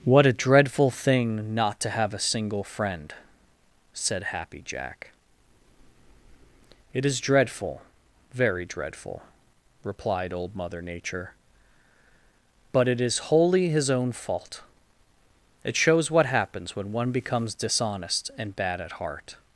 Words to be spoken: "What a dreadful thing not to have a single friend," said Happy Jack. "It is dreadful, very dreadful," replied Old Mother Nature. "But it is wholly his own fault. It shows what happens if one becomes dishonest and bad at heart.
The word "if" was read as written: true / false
false